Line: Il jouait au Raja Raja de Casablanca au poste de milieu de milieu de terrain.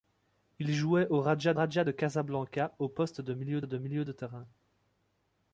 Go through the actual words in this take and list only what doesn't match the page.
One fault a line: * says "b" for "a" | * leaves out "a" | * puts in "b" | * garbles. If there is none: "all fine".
all fine